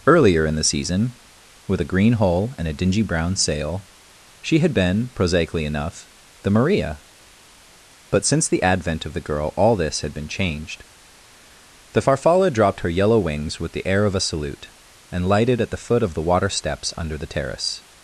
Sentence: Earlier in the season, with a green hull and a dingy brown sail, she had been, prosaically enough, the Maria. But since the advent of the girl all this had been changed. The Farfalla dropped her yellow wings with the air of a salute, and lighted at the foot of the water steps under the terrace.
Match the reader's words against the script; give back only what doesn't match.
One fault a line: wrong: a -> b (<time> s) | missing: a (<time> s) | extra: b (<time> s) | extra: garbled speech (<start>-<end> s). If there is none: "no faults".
no faults